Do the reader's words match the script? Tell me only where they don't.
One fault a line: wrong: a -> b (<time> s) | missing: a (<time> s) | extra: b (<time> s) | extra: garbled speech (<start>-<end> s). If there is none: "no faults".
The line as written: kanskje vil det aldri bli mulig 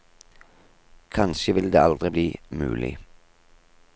no faults